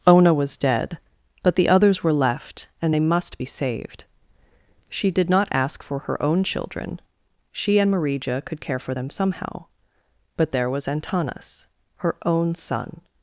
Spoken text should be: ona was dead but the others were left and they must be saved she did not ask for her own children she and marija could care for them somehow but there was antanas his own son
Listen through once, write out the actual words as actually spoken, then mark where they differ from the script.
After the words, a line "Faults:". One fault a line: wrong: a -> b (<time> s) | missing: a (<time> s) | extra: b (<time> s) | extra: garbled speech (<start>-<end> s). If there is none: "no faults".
ona was dead but the others were left and they must be saved she did not ask for her own children she and marija could care for them somehow but there was antanas her own son
Faults:
wrong: his -> her (12.0 s)